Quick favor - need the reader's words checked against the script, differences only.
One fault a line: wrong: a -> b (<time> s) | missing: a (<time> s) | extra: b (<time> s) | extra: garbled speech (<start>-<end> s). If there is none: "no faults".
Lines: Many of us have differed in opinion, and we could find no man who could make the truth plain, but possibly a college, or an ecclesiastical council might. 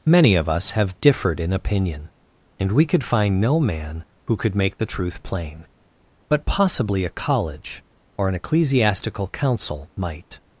no faults